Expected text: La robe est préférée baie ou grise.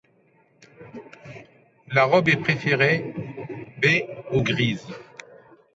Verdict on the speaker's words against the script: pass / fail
pass